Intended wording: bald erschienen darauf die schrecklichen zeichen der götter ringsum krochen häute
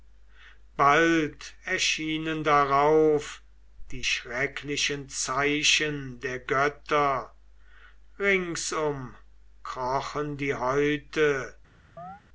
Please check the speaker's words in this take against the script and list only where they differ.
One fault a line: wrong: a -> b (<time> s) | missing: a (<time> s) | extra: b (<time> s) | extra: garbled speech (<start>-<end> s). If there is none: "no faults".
extra: die (10.4 s)